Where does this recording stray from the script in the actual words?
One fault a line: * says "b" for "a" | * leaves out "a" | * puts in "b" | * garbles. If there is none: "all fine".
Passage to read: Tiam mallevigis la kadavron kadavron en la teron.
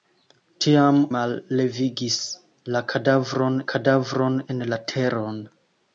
all fine